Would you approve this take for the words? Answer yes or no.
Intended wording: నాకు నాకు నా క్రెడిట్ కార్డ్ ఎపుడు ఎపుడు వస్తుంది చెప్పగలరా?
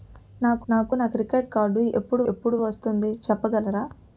yes